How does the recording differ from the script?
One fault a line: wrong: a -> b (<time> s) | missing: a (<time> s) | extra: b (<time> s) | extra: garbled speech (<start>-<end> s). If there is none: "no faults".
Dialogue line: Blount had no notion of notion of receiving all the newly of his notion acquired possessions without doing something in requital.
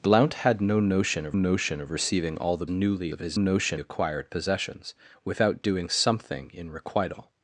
no faults